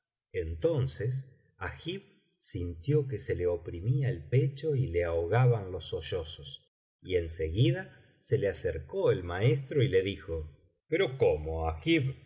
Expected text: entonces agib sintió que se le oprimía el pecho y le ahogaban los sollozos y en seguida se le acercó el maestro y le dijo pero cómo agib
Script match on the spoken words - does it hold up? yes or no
yes